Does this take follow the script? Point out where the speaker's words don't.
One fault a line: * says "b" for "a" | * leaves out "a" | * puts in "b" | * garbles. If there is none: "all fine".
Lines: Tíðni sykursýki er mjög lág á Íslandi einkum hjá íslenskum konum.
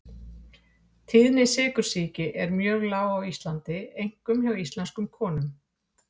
all fine